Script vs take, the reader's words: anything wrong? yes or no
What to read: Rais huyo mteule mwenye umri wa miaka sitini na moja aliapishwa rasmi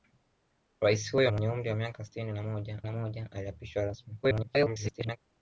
yes